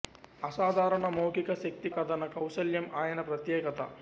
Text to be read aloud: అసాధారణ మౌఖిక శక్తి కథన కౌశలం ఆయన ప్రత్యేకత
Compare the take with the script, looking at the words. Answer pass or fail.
pass